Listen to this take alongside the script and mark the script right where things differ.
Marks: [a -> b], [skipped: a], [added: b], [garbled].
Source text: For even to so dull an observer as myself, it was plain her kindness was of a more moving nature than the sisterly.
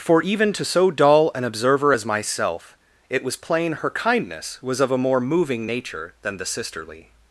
For even to so dull an observer as myself, it was plain her kindness was of a more moving nature than the sisterly.